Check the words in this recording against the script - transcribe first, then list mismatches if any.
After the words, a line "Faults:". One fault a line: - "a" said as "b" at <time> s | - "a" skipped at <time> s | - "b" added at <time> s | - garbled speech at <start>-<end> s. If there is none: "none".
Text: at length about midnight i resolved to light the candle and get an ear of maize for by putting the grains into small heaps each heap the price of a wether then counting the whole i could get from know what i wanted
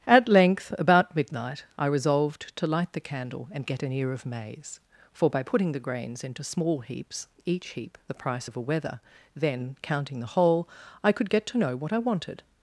at length about midnight i resolved to light the candle and get an ear of maize for by putting the grains into small heaps each heap the price of a wether then counting the whole i could get to know what i wanted
Faults:
- "from" said as "to" at 11.5 s